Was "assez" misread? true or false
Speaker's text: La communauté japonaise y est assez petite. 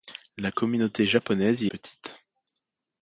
true